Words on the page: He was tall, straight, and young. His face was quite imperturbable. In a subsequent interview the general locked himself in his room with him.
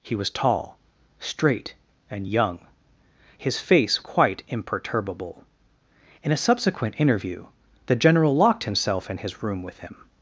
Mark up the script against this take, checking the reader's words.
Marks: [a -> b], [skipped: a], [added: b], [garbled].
He was tall, straight, and young. His face [skipped: was] quite imperturbable. In a subsequent interview the general locked himself in his room with him.